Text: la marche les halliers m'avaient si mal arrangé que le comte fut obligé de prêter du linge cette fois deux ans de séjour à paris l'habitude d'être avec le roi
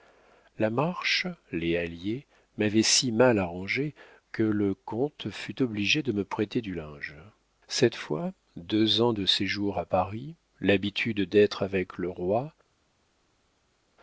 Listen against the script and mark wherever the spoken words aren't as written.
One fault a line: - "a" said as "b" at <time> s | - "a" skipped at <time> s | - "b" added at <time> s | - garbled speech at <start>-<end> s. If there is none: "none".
- "me" added at 6.1 s